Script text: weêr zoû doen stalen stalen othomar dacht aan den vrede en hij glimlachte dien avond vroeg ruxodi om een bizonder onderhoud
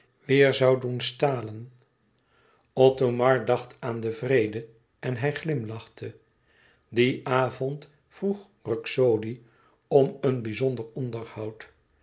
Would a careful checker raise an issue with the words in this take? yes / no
yes